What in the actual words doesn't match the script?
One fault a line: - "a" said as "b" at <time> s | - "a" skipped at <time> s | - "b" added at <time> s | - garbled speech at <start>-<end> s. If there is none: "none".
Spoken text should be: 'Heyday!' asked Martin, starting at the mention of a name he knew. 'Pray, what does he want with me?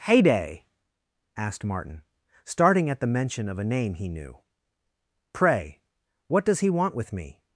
none